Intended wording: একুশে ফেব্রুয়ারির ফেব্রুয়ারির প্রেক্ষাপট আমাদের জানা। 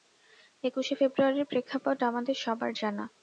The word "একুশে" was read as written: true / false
true